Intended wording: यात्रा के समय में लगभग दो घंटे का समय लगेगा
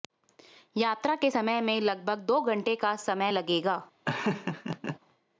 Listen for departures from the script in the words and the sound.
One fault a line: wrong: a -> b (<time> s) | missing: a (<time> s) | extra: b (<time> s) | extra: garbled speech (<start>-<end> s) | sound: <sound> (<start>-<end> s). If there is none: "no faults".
sound: laugh (4.1-5.0 s)